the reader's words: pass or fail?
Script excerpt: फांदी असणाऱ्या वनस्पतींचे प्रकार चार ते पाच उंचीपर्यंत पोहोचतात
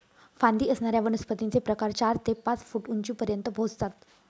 fail